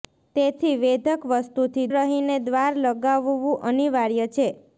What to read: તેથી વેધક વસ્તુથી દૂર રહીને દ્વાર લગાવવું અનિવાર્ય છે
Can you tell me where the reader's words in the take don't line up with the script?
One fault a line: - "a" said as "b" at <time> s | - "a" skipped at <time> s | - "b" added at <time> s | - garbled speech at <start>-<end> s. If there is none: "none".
- "દૂર" skipped at 1.9 s